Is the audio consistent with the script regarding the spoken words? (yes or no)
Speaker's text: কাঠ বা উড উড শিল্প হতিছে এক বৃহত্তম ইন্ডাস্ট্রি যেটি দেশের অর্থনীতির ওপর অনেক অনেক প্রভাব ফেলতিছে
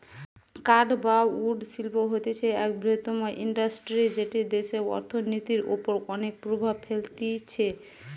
no